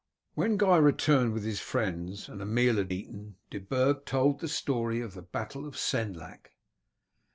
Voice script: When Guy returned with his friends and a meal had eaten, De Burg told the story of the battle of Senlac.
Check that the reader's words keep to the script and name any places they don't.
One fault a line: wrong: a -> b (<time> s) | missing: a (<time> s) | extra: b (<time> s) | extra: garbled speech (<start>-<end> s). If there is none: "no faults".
no faults